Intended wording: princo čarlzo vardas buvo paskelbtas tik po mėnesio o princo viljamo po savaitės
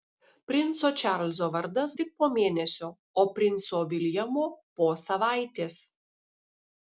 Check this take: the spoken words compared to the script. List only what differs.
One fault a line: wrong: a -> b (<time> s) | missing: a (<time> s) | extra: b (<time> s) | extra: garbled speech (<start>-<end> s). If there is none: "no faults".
missing: buvo paskelbtas (1.9 s)